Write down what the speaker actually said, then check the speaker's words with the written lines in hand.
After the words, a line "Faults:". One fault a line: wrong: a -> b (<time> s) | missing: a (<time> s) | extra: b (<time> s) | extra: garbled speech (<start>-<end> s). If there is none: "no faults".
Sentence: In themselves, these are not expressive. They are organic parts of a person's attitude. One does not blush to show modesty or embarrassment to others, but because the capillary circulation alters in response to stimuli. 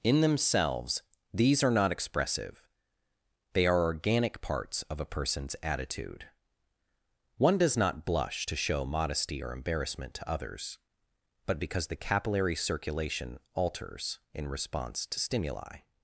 In themselves, these are not expressive. They are organic parts of a person's attitude. One does not blush to show modesty or embarrassment to others, but because the capillary circulation alters in response to stimuli.
Faults:
no faults